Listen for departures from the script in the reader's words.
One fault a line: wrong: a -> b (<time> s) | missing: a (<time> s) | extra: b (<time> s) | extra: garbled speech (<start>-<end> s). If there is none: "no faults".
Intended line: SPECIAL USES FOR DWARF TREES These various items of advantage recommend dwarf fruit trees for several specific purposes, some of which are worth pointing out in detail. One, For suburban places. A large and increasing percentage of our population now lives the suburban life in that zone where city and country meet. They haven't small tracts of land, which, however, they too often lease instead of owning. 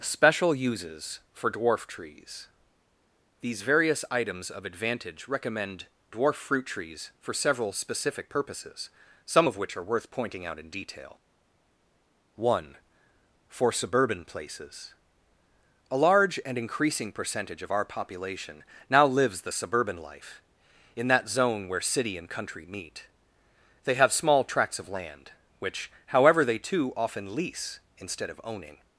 wrong: haven't -> have (23.9 s)